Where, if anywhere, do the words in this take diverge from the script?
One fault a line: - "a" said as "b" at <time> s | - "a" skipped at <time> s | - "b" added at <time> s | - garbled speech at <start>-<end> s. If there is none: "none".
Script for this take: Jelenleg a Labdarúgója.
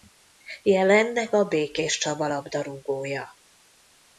- "Békéscsaba" added at 1.4 s